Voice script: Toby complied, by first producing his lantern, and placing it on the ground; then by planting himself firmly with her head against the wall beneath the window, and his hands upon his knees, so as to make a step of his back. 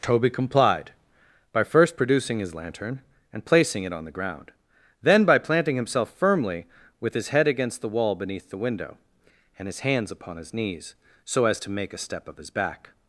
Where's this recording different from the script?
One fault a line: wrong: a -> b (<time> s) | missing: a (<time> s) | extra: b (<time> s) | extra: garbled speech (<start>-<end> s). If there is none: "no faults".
wrong: her -> his (7.1 s)